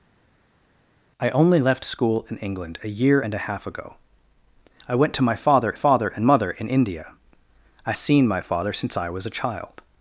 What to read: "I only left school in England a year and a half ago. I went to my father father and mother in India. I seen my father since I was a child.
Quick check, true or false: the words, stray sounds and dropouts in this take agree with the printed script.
true